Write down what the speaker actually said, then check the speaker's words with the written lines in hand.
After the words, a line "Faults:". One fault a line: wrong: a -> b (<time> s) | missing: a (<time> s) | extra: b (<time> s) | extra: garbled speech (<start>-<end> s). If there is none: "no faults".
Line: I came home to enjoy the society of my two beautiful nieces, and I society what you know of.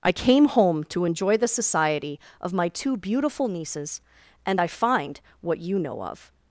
I came home to enjoy the society of my two beautiful nieces, and I find what you know of.
Faults:
wrong: society -> find (4.7 s)